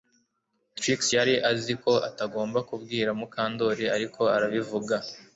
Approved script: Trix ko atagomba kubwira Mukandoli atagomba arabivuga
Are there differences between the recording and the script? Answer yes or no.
yes